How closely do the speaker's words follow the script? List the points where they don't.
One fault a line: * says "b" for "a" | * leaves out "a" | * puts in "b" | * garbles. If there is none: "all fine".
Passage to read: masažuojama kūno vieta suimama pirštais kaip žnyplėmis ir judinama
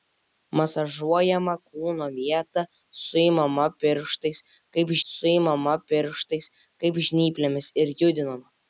* puts in "suimama pirštais kaip"